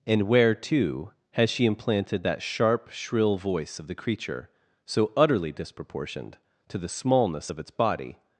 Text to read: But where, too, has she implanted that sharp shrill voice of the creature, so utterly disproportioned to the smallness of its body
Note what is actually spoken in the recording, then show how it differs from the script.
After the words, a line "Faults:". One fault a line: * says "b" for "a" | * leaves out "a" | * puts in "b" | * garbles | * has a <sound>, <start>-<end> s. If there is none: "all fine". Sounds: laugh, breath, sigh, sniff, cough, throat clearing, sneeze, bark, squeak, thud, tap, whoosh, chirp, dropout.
And where, too, has she implanted that sharp shrill voice of the creature, so utterly disproportioned to the smallness of its body
Faults:
* says "And" for "But"